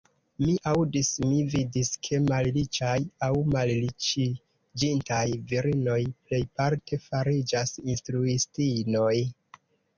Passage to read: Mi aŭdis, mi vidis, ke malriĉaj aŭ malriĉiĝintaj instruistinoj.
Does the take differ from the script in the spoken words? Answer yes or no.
yes